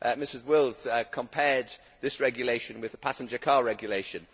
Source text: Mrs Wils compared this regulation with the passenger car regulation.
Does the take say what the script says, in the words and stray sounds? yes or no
yes